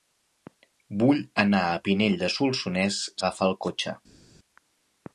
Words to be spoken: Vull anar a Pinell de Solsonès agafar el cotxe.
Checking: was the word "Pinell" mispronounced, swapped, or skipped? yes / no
no